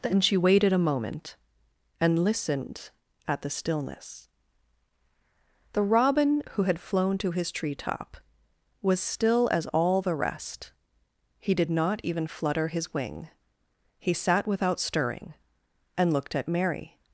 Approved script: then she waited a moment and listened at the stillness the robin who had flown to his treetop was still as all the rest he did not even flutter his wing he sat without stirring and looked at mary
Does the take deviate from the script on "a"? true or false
false